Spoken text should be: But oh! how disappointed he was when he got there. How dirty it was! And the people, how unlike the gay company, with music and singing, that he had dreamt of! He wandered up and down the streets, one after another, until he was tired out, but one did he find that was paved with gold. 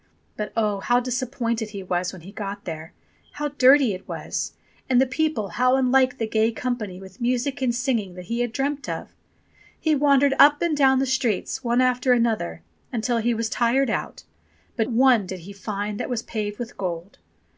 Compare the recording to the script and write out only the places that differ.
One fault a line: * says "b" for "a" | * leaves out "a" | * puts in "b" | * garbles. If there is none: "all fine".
all fine